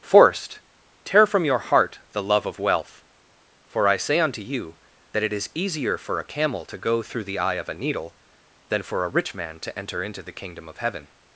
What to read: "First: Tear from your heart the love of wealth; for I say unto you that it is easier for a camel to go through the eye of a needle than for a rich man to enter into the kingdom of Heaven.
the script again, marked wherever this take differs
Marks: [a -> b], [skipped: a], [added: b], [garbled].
["First: -> Forced] Tear from your heart the love of wealth; for I say unto you that it is easier for a camel to go through the eye of a needle than for a rich man to enter into the kingdom of Heaven.